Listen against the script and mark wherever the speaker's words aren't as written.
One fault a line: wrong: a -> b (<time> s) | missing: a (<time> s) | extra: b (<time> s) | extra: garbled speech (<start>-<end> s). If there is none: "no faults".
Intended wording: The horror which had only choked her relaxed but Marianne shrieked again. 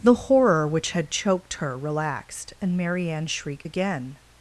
missing: only (1.1 s)
wrong: but -> and (2.6 s)